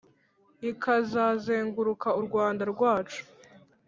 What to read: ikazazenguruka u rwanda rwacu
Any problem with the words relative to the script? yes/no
no